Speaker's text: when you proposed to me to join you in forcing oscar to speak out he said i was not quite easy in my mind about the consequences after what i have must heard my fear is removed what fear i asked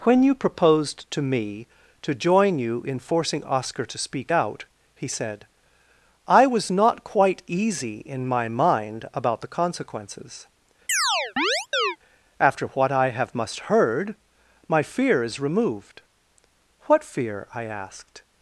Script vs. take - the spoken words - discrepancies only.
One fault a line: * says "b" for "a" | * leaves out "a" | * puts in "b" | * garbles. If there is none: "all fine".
all fine